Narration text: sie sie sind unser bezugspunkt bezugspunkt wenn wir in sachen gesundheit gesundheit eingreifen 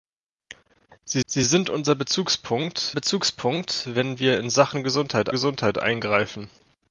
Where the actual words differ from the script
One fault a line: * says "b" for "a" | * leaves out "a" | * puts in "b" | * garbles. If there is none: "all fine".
all fine